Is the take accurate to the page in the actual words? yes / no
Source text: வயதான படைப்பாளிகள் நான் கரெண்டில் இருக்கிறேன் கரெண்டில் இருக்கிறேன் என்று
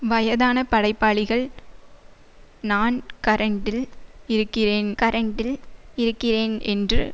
yes